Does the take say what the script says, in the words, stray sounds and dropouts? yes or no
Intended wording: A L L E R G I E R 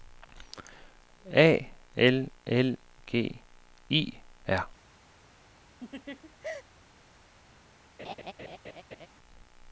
no